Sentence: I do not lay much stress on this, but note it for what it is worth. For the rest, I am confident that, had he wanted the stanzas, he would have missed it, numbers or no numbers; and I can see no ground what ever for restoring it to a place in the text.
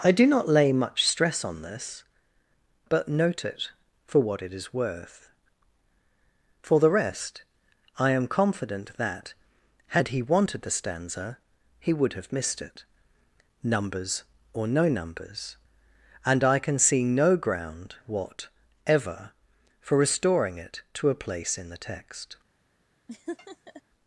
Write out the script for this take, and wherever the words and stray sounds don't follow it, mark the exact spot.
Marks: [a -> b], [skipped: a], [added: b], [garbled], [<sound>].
I do not lay much stress on this, but note it for what it is worth. For the rest, I am confident that, had he wanted the [stanzas, -> stanza] he would have missed it, numbers or no numbers; and I can see no ground what ever for restoring it to a place in the text. [laugh]